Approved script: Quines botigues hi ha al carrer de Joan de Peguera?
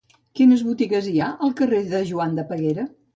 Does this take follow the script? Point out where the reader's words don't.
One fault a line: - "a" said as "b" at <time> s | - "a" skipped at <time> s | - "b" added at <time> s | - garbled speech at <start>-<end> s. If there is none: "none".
none